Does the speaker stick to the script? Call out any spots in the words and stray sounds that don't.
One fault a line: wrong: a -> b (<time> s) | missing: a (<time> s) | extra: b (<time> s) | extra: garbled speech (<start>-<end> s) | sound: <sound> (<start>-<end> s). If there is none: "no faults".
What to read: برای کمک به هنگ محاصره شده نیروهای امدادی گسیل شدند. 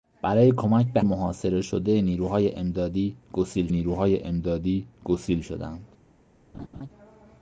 missing: هنگ (1.0 s)
extra: نیروهای امدادی گسیل (3.7 s)
sound: laugh (6.5-6.9 s)